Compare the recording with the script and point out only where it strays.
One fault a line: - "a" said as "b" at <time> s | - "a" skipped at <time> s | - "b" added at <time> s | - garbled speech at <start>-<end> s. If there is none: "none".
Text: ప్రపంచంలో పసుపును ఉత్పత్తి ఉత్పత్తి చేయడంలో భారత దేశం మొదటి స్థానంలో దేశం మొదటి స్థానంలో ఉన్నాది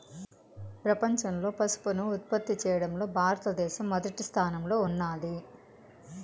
- "ఉత్పత్తి" skipped at 2.5 s
- "దేశం మొదటి స్థానంలో" skipped at 4.8 s